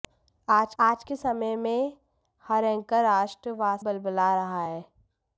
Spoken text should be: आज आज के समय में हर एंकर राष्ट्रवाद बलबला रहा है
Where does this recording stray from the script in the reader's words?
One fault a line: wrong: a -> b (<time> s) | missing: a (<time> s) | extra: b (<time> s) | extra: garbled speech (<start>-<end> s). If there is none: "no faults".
no faults